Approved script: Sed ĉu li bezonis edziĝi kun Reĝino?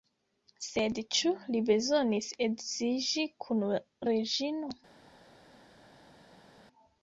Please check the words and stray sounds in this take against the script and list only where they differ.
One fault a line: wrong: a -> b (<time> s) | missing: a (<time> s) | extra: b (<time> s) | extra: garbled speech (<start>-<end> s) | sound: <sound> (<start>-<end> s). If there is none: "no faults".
no faults